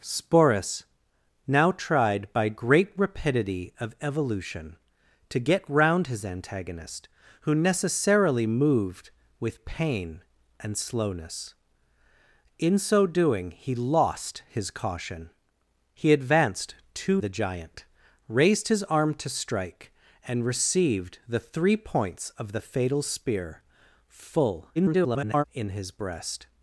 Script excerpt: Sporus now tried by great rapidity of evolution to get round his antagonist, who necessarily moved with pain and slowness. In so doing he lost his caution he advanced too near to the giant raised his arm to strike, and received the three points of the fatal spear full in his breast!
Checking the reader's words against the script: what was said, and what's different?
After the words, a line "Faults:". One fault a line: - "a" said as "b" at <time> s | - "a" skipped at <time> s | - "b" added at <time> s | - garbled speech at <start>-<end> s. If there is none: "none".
Sporus now tried by great rapidity of evolution to get round his antagonist, who necessarily moved with pain and slowness. In so doing he lost his caution he advanced too the giant raised his arm to strike, and received the three points of the fatal spear full [garbled] in his breast!
Faults:
- "near to" skipped at 17.2 s
- garbled speech at 24.8-25.4 s